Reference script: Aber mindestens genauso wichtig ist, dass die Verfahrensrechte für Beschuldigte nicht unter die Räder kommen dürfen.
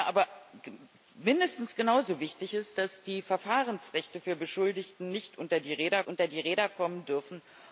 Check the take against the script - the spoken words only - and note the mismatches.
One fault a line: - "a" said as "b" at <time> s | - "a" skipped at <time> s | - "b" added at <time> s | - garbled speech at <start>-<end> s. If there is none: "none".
- "unter die Räder" added at 6.1 s